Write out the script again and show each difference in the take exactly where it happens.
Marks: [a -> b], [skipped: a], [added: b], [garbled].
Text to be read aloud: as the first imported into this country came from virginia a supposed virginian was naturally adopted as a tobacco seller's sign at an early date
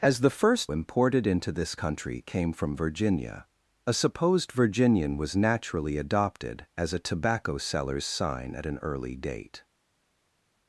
as the first imported into this country came from virginia a supposed virginian was naturally adopted as a tobacco seller's sign at an early date